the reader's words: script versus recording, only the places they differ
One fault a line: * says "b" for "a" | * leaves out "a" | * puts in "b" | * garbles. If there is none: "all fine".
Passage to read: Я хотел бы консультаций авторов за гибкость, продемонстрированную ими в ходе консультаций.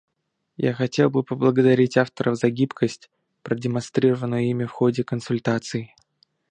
* says "поблагодарить" for "консультаций"